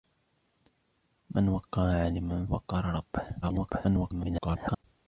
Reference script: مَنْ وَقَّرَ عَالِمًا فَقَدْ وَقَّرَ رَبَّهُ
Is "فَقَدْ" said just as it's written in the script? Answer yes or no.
no